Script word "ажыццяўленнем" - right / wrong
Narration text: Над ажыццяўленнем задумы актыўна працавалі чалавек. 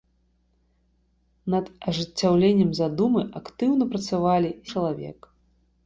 right